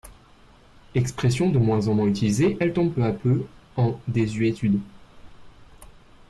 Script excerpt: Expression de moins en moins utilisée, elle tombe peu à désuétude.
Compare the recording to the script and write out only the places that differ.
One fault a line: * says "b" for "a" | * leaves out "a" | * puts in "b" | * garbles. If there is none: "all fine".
* puts in "peu en"